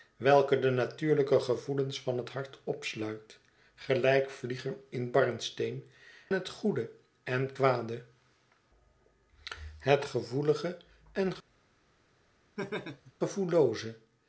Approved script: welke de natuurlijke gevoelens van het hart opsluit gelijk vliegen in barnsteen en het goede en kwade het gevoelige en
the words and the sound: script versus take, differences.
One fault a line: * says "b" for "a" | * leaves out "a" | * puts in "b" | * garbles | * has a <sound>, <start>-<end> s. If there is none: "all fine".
* leaves out "en"
* has a laugh, 12.6-13.1 s